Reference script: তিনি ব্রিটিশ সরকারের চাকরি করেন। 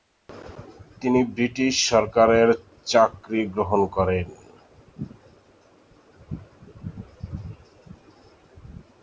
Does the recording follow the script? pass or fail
fail